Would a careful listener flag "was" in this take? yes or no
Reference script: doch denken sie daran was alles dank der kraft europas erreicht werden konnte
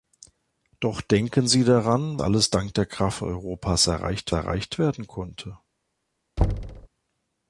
yes